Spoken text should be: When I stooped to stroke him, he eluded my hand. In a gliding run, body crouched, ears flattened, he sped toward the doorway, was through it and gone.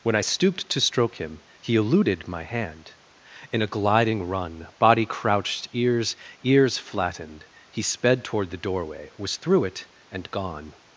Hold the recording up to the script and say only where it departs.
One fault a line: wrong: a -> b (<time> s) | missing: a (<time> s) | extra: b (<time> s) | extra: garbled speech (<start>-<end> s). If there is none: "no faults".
extra: ears (6.4 s)